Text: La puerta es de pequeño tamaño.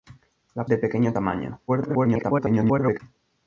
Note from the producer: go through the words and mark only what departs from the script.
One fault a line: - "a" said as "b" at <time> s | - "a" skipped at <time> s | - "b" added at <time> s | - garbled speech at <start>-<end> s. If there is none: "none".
- "puerta es" skipped at 0.7 s
- garbled speech at 1.7-3.0 s